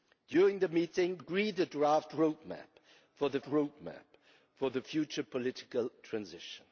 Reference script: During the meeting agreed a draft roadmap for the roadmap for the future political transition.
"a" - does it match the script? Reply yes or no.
yes